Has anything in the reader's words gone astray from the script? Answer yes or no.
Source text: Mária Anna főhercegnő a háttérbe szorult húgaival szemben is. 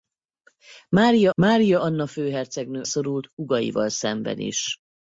yes